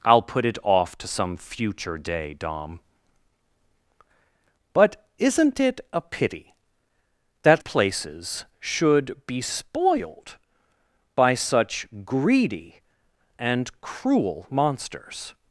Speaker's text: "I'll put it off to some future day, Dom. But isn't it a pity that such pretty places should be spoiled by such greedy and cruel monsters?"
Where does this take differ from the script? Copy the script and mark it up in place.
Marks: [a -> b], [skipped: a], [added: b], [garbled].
"I'll put it off to some future day, Dom. But isn't it a pity that [skipped: such pretty] places should be spoiled by such greedy and cruel monsters?"